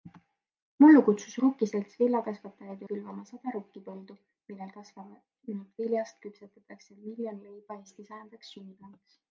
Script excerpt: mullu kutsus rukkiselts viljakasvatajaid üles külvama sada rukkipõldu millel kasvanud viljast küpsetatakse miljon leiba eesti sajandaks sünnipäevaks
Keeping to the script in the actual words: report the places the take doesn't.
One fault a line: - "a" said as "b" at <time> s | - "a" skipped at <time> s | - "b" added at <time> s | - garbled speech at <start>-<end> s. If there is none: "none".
- "üles" skipped at 2.8 s